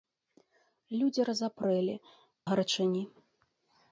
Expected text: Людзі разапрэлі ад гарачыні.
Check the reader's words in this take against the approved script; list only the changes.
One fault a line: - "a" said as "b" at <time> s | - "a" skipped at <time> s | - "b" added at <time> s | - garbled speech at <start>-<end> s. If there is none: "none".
- "ад" skipped at 1.9 s